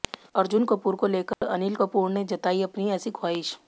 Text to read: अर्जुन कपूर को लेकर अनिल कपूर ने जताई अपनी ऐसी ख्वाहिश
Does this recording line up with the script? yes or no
yes